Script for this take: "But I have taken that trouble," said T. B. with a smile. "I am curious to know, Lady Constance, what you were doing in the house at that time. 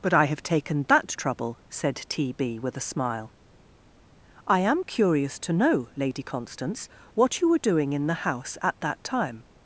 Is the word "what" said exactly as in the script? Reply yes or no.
yes